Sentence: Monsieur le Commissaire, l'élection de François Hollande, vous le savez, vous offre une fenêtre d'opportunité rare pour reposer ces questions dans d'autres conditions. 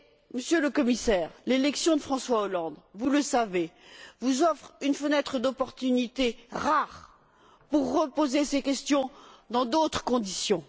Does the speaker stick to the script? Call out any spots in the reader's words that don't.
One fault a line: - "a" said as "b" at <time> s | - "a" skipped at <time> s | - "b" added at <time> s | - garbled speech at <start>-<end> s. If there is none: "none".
none